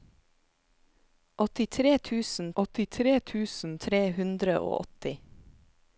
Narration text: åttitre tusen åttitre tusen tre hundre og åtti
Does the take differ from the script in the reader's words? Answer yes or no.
no